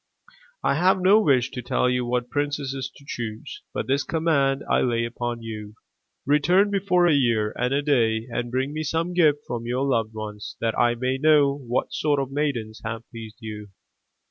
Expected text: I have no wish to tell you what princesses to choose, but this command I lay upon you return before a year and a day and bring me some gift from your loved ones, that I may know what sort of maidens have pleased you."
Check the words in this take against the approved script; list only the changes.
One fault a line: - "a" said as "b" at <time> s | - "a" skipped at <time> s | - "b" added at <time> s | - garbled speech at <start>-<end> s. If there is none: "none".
none